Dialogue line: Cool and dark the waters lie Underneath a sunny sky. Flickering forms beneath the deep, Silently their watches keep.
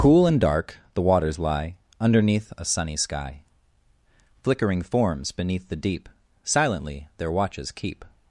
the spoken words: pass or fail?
pass